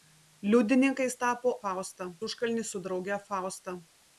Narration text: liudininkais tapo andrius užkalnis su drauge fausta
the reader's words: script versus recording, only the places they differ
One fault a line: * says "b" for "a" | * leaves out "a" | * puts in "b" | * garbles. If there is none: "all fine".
* says "fausta" for "andrius"